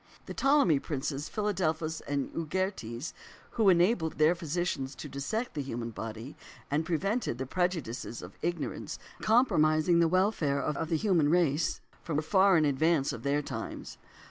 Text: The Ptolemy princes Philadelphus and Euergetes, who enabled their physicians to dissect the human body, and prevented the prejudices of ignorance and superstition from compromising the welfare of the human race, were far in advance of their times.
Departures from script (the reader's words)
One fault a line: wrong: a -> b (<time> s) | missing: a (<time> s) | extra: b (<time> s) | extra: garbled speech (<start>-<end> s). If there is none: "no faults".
missing: and superstition from (9.0 s)
extra: of (10.7 s)